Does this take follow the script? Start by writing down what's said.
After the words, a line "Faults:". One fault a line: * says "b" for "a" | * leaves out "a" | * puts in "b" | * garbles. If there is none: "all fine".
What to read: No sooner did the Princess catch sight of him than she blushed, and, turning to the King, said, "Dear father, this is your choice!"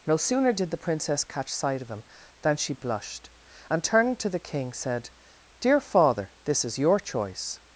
No sooner did the Princess catch sight of him than she blushed, and, turning to the King, said, "Dear father, this is your choice!"
Faults:
all fine